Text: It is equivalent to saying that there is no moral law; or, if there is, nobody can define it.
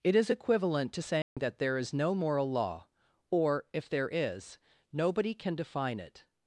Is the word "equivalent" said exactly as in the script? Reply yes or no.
yes